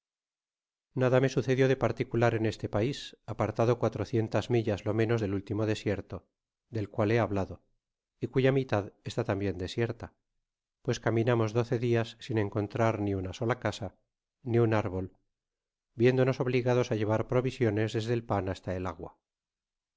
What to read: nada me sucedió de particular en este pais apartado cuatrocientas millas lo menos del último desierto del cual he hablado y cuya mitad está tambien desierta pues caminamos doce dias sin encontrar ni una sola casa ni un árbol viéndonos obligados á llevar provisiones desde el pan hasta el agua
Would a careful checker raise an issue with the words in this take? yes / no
no